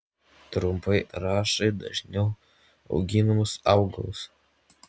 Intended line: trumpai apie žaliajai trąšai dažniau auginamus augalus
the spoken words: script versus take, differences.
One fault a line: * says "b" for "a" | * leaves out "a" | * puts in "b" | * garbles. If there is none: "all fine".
* leaves out "apie žaliajai"